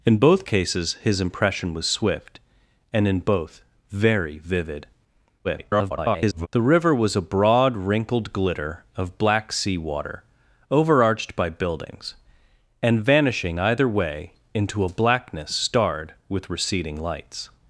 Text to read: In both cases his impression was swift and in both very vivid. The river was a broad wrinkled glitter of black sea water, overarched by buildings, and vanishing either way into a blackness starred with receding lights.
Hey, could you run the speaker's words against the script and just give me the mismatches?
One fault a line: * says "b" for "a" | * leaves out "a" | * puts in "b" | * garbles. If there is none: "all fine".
* garbles